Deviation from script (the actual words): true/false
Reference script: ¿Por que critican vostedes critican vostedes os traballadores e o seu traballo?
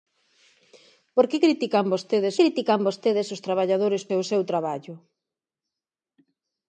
false